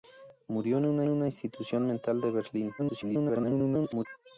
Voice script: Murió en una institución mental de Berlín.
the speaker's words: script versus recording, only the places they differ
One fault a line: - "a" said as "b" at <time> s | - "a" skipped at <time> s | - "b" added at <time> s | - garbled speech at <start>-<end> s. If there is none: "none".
- "una" added at 1.1 s
- garbled speech at 2.8-4.1 s